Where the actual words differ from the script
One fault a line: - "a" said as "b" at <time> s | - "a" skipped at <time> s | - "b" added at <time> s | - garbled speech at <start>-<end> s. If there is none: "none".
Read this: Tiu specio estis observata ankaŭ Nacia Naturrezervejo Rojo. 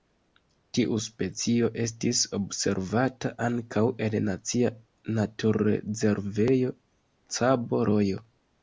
- "en" added at 4.1 s
- "Cabo" added at 7.4 s